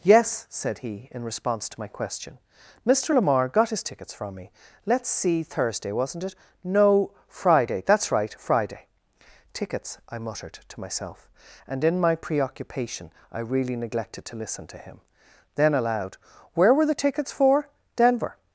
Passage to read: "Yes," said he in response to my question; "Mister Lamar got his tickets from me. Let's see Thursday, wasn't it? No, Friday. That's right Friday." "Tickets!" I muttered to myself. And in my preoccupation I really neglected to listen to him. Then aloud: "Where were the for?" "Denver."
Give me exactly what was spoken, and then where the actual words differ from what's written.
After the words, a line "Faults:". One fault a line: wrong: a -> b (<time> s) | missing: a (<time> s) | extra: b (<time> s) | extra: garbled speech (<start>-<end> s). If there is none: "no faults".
"Yes," said he in response to my question; "Mister Lamar got his tickets from me. Let's see Thursday, wasn't it? No, Friday. That's right Friday." "Tickets!" I muttered to myself. And in my preoccupation I really neglected to listen to him. Then aloud: "Where were the tickets for?" "Denver."
Faults:
extra: tickets (17.0 s)